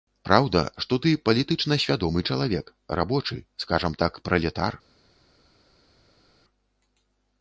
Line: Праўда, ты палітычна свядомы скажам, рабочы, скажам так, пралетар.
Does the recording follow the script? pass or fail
fail